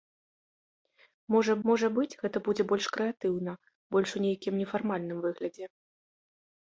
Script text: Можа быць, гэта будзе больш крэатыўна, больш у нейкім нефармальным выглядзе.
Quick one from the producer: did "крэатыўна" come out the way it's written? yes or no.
yes